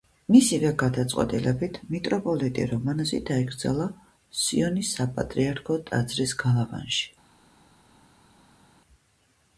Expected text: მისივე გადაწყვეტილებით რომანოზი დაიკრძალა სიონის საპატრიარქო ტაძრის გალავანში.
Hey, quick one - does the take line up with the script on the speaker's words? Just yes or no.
no